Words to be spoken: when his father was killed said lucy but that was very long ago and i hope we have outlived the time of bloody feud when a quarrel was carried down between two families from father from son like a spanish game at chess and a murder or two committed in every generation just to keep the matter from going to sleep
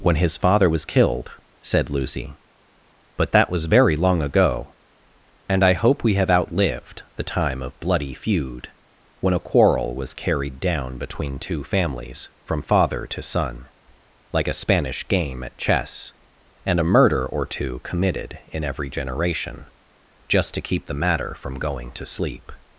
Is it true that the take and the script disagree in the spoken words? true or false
true